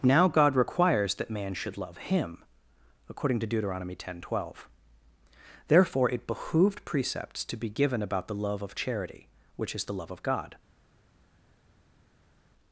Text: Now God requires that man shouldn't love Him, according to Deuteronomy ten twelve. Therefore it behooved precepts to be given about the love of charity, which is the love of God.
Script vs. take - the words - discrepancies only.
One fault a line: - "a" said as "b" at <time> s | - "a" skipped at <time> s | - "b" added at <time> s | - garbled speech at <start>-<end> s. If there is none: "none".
- "shouldn't" said as "should" at 1.5 s